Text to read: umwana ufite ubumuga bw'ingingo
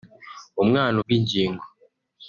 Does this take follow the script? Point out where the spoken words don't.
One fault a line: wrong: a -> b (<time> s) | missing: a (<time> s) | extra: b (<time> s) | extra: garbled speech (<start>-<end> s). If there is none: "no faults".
missing: ufite ubumuga (0.9 s)